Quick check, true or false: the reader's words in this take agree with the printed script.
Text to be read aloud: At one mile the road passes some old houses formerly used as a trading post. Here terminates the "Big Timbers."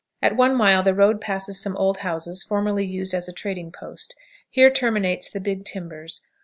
true